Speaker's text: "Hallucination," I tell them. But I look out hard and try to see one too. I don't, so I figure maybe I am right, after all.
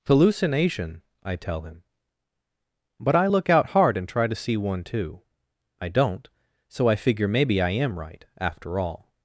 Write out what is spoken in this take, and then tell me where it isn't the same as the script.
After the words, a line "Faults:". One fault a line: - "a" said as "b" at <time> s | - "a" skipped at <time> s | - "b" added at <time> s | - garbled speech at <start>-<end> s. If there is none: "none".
"Hallucination," I tell him. But I look out hard and try to see one too. I don't, so I figure maybe I am right, after all.
Faults:
- "them" said as "him" at 1.6 s